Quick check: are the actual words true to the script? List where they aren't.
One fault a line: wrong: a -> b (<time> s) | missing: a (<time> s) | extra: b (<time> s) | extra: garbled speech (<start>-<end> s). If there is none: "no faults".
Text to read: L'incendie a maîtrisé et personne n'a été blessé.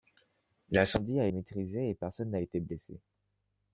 no faults